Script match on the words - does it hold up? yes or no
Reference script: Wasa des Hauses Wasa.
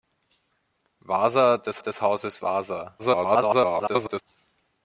no